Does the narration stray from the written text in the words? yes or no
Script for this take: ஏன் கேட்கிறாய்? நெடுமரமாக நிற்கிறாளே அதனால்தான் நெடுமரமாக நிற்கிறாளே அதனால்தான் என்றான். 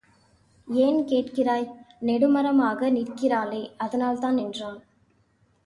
yes